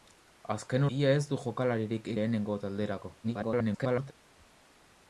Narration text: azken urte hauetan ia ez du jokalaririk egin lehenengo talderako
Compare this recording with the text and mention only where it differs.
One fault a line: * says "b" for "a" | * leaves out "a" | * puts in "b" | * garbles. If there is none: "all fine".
* leaves out "urte hauetan"
* leaves out "egin"
* garbles